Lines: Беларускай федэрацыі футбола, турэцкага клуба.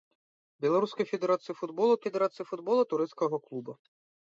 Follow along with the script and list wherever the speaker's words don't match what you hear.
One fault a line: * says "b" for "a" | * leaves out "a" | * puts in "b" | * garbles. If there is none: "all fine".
* puts in "федэрацыі футбола"